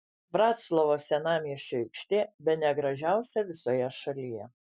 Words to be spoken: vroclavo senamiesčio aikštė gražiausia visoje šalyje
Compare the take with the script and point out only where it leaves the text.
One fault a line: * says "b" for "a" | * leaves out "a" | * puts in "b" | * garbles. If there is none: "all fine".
* puts in "bene"